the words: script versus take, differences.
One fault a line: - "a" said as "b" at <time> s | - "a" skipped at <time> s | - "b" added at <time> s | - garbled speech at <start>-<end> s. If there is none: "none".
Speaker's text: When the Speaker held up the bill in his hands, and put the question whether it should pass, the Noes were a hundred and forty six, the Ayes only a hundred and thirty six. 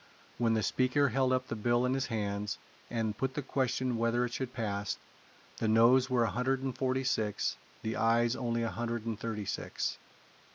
none